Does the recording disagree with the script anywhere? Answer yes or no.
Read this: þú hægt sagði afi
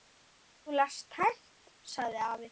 yes